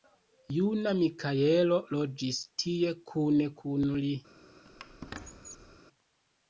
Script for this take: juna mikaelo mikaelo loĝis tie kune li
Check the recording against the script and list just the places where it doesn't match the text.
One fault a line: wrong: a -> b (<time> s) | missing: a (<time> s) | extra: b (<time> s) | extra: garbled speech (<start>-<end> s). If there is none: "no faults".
missing: mikaelo (1.8 s)
extra: kun (3.6 s)